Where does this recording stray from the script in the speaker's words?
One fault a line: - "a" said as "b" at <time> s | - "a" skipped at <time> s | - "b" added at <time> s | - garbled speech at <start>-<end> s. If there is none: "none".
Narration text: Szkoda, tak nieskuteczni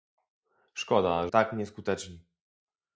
none